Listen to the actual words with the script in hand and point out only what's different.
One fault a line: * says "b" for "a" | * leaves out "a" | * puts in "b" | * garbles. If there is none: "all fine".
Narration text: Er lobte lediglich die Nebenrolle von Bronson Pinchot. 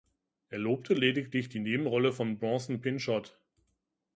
all fine